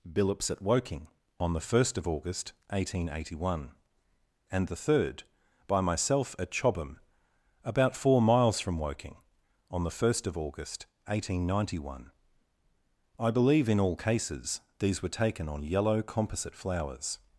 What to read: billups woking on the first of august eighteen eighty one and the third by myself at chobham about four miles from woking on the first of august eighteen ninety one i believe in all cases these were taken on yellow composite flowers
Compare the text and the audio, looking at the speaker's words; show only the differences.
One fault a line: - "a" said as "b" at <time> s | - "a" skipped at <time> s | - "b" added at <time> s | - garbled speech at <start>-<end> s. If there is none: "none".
- "at" added at 0.5 s